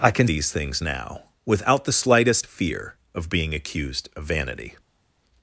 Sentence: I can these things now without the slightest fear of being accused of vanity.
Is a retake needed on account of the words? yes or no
no